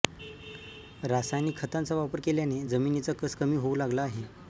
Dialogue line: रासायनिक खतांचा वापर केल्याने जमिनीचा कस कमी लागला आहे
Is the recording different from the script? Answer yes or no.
yes